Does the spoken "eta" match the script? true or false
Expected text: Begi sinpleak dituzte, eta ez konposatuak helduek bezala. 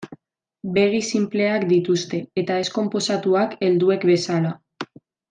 true